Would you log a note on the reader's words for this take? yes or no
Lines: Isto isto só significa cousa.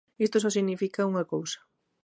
yes